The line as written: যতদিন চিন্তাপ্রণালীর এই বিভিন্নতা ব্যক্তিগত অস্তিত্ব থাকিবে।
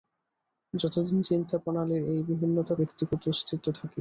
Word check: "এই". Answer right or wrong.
right